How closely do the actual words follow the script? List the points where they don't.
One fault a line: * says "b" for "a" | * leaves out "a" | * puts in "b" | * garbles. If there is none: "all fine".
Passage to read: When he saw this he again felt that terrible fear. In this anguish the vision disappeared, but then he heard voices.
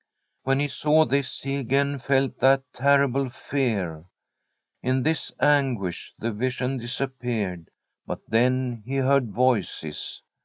all fine